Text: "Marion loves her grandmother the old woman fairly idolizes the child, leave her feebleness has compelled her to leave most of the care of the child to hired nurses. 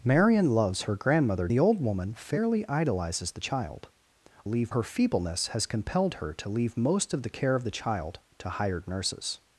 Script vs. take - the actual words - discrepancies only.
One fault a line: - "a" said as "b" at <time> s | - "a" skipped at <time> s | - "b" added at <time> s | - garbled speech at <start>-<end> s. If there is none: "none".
none